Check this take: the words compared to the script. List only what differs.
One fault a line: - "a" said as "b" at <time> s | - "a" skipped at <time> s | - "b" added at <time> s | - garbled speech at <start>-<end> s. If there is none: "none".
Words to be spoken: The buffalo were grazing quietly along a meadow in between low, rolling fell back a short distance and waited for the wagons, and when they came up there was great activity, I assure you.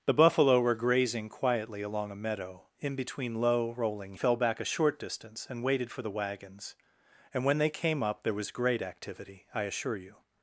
none